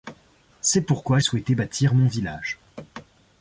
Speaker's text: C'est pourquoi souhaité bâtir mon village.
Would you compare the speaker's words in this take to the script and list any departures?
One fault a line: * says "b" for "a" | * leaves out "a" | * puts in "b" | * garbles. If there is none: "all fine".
all fine